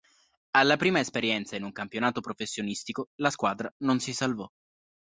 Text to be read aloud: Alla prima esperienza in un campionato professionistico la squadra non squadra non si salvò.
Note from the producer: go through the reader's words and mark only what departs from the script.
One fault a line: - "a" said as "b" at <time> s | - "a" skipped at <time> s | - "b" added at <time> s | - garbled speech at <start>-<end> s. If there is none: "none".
- "squadra non" skipped at 4.0 s